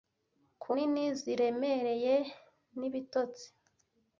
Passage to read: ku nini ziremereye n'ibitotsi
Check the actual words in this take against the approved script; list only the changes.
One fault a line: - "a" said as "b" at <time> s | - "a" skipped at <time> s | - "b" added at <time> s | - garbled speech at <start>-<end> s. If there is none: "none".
none